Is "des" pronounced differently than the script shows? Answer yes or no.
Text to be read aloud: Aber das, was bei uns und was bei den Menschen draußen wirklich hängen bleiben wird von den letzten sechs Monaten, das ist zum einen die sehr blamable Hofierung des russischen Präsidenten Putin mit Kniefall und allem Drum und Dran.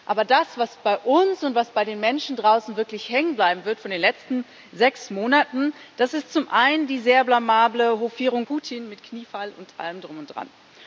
yes